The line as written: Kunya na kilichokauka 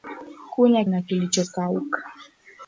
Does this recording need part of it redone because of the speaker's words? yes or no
no